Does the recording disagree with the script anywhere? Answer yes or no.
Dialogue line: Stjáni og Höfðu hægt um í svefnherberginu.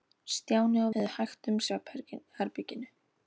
no